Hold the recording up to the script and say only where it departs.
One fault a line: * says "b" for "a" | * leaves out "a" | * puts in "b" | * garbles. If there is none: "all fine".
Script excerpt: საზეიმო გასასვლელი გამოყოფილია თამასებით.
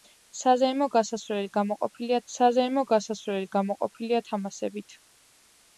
* puts in "საზეიმო გასასვლელი გამოყოფილია"